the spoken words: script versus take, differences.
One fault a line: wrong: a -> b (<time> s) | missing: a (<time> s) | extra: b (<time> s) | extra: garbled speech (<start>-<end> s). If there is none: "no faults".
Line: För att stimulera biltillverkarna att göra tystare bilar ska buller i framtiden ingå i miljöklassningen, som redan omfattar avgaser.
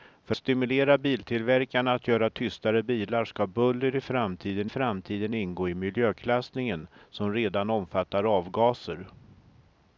missing: att (0.3 s)
extra: framtiden (4.7 s)